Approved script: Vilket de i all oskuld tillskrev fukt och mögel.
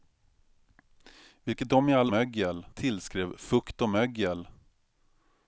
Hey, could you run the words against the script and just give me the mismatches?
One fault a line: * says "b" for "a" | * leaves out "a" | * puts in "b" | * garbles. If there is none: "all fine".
* says "mögel" for "oskuld"